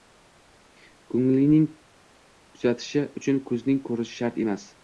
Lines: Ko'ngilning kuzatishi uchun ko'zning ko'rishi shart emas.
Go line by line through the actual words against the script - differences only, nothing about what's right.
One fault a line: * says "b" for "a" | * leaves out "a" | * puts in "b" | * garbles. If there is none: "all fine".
all fine